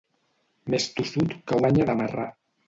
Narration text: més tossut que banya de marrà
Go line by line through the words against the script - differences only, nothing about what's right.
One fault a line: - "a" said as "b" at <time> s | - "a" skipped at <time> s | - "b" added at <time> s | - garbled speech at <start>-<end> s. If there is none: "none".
none